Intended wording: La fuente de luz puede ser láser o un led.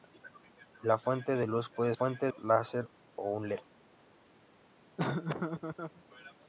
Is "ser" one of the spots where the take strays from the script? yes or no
yes